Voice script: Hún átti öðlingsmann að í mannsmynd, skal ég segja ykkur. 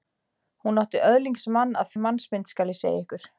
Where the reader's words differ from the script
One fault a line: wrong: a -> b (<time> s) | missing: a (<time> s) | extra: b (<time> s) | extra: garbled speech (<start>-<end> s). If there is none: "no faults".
no faults